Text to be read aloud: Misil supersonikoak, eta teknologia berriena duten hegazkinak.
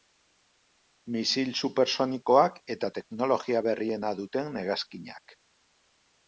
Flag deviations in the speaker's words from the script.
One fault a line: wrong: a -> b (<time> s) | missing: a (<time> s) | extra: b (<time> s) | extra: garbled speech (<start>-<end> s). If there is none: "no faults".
no faults